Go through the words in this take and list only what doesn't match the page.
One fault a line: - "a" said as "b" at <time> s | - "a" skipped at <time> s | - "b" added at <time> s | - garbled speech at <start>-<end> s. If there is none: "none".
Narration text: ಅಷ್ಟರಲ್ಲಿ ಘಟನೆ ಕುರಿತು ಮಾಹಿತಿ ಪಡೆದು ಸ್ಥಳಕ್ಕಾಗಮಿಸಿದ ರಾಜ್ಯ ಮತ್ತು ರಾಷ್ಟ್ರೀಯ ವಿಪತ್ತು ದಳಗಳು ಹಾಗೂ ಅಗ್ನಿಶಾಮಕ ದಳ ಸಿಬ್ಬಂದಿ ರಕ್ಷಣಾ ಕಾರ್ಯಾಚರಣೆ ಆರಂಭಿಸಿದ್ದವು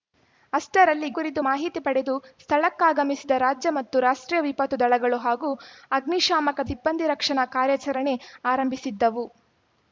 - "ಘಟನೆ" skipped at 1.1 s
- "ದಳ" skipped at 6.7 s